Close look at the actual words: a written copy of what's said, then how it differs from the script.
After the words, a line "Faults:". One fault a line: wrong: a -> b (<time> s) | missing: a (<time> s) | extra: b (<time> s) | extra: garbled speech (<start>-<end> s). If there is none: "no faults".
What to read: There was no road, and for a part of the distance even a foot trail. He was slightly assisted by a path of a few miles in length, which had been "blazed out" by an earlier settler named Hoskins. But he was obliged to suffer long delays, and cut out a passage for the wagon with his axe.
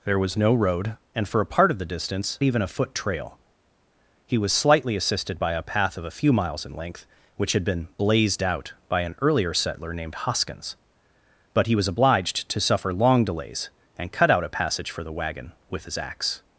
There was no road, and for a part of the distance even a foot trail. He was slightly assisted by a path of a few miles in length, which had been "blazed out" by an earlier settler named Hoskins. But he was obliged to suffer long delays, and cut out a passage for the wagon with his axe.
Faults:
no faults